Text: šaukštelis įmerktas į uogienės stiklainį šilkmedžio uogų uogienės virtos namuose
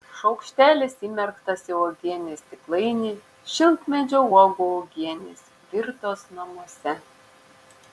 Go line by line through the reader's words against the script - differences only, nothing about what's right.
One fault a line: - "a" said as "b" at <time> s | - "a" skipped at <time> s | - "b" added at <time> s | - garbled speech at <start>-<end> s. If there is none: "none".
none